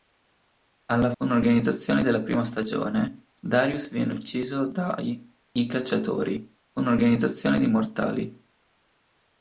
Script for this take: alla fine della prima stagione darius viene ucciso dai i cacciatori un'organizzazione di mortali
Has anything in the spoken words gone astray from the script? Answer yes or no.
yes